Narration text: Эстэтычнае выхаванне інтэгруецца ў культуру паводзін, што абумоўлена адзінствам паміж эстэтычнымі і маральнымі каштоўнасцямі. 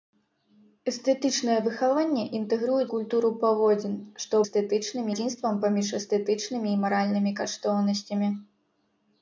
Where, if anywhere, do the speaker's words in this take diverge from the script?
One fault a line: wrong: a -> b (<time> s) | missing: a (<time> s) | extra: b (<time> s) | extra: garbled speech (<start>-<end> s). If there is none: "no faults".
missing: ў (2.9 s)
wrong: абумоўлена -> эстэтычнымі (4.5 s)